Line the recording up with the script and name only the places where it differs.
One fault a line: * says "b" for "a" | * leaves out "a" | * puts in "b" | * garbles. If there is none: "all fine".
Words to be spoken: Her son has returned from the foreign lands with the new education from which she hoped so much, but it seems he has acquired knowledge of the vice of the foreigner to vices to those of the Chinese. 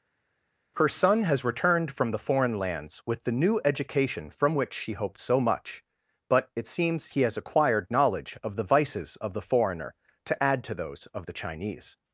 * says "vices" for "vice"
* says "add" for "vices"